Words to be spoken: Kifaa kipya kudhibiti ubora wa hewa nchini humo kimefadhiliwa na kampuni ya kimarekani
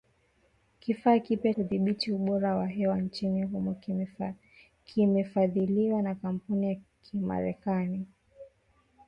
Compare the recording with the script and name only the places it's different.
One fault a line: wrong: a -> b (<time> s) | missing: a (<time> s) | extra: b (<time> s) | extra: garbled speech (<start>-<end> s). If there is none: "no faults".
no faults